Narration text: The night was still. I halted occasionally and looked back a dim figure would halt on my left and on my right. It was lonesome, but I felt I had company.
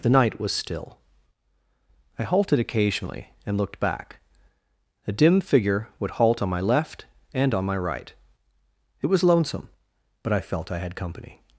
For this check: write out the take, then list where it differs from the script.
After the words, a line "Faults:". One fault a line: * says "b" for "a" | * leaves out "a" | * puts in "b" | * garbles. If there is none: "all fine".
The night was still. I halted occasionally and looked back a dim figure would halt on my left and on my right. It was lonesome, but I felt I had company.
Faults:
all fine